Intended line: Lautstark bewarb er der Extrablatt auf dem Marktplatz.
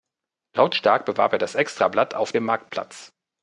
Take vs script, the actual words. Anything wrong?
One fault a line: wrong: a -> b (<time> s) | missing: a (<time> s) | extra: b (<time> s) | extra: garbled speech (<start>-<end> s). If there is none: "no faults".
wrong: der -> das (1.4 s)